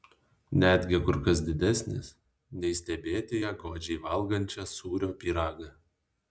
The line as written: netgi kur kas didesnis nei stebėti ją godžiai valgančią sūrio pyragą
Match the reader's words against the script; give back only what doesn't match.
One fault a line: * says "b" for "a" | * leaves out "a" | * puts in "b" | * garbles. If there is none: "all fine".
all fine